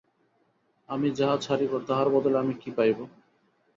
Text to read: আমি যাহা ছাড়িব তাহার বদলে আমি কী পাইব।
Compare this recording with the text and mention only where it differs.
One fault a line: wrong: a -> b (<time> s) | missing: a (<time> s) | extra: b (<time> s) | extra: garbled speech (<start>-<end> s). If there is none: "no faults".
no faults